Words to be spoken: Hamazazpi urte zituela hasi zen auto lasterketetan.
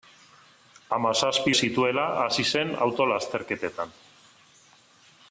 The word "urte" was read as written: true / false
false